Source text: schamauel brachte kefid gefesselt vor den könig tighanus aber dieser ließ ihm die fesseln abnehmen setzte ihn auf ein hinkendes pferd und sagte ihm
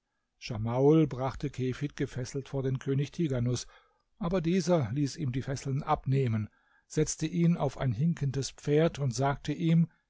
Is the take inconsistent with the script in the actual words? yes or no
no